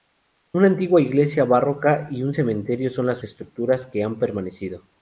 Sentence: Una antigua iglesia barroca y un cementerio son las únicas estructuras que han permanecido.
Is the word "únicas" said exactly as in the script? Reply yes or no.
no